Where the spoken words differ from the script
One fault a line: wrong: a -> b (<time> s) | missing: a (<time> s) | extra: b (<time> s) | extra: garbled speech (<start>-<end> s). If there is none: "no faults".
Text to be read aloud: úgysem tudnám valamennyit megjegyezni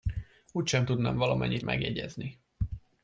no faults